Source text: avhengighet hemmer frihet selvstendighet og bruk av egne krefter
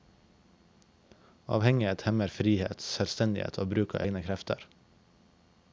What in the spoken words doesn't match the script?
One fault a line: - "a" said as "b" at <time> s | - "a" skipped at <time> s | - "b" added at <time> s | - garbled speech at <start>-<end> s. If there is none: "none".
none